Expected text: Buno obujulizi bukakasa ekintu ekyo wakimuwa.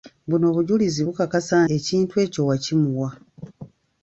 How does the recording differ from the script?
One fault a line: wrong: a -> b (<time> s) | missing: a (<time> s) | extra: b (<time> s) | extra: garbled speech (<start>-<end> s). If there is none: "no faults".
no faults